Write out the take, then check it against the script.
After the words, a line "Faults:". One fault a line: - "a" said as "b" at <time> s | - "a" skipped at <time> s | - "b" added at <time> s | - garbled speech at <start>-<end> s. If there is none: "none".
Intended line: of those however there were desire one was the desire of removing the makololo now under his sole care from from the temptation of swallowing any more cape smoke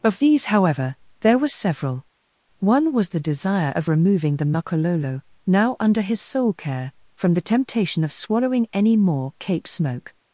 of these however there were several one was the desire of removing the makololo now under his sole care from the temptation of swallowing any more cape smoke
Faults:
- "those" said as "these" at 0.2 s
- "desire" said as "several" at 1.5 s
- "from" skipped at 7.3 s